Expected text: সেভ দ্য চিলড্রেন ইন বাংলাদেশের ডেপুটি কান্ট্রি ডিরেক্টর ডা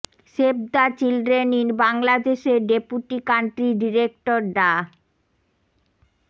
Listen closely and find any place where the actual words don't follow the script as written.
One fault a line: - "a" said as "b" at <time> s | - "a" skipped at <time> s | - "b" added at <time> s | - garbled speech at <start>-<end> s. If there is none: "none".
none